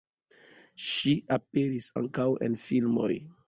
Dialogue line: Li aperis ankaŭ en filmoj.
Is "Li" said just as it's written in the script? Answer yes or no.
no